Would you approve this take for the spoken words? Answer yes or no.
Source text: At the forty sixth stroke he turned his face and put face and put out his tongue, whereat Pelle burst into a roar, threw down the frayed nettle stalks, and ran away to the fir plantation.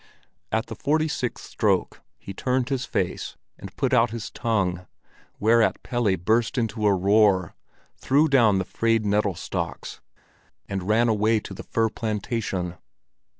no